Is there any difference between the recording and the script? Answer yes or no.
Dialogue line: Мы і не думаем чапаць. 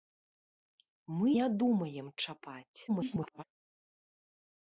yes